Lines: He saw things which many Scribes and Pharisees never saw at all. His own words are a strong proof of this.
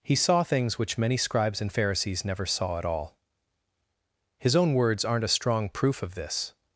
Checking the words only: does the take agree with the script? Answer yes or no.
no